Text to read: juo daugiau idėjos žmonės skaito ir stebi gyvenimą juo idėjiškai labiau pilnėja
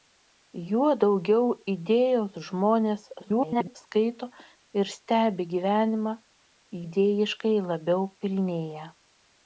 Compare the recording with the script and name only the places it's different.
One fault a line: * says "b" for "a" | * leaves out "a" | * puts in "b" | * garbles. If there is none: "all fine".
* garbles
* leaves out "juo"